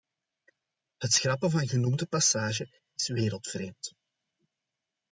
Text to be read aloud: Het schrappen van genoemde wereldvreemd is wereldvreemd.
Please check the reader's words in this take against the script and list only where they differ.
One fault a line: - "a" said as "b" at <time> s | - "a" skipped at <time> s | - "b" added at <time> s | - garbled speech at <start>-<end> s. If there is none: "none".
- "wereldvreemd" said as "passage" at 2.0 s